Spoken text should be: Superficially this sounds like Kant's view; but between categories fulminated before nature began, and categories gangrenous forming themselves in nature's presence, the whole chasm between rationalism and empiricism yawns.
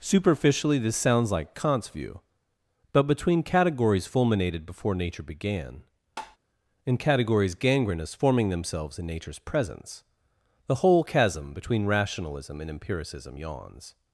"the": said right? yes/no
yes